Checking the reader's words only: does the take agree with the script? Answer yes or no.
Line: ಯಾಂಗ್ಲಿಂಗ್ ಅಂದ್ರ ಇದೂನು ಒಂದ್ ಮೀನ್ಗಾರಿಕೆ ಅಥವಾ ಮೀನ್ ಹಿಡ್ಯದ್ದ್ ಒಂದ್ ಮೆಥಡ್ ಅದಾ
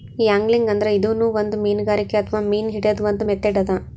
yes